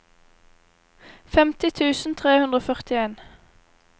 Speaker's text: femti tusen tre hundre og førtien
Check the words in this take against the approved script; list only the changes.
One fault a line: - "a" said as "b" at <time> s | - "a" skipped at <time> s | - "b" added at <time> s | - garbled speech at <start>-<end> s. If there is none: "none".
none